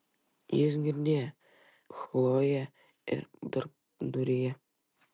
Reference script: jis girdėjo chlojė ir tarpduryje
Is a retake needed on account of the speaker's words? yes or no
no